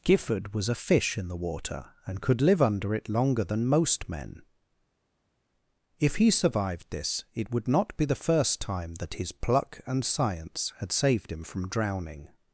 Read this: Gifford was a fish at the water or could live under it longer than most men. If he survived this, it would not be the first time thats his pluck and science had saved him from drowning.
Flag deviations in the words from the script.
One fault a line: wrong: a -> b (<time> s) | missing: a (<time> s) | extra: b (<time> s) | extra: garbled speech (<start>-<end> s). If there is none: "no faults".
wrong: at -> in (1.2 s)
wrong: or -> and (2.1 s)
wrong: thats -> that (9.0 s)